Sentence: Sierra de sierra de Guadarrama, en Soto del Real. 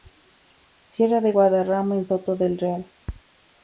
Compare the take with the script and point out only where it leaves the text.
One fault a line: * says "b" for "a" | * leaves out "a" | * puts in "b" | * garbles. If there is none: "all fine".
* leaves out "sierra de"